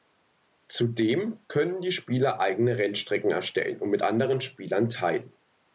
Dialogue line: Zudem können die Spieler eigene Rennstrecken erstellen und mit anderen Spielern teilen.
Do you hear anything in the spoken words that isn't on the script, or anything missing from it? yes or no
no